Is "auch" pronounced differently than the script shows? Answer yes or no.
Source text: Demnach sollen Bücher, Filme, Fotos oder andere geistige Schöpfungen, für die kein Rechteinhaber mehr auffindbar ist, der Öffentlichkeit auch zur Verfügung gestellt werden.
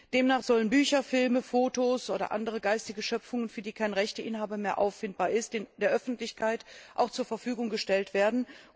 no